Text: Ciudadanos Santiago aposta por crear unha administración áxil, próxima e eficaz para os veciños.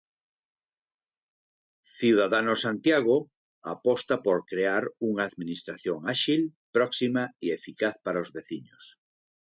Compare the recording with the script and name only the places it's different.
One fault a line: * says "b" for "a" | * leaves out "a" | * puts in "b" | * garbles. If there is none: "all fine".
all fine